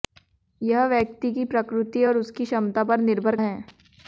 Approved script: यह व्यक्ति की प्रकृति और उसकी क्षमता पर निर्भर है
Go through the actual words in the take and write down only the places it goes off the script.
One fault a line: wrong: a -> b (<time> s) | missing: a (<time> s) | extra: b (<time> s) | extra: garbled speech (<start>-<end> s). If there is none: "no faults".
no faults